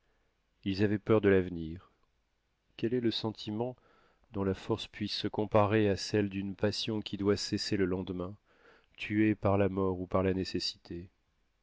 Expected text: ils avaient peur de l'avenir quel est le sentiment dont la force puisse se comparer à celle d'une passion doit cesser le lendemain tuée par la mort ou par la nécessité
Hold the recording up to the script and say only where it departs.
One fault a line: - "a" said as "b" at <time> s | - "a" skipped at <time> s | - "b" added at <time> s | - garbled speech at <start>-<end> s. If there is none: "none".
- "qui" added at 7.0 s